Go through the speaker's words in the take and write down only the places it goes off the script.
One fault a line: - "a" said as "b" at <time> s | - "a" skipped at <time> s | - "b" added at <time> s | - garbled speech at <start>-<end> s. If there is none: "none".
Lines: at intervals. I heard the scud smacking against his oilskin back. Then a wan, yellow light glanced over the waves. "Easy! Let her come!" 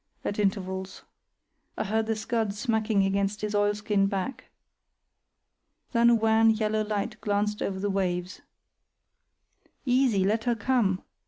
none